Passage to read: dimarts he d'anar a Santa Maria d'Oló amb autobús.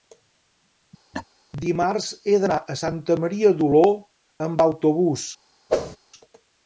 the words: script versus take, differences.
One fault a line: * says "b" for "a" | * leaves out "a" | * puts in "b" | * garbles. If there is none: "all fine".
all fine